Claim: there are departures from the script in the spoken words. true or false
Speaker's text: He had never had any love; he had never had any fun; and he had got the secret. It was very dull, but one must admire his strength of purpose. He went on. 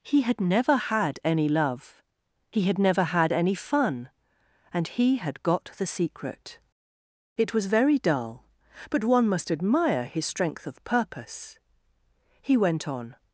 false